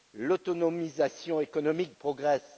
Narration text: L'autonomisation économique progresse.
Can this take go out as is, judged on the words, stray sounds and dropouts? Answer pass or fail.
pass